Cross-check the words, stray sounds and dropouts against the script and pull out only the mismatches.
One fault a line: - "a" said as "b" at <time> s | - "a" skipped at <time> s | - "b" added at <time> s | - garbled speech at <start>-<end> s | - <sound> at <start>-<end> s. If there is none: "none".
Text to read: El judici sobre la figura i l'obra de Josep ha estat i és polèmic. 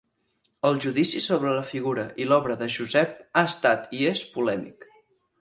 none